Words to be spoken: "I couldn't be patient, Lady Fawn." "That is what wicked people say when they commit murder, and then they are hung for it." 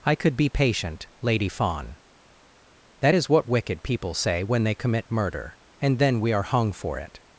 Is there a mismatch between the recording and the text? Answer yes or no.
yes